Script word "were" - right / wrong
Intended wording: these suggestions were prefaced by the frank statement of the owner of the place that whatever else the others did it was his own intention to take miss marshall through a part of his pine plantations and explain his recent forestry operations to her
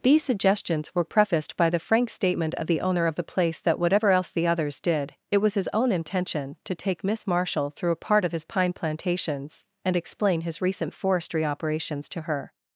right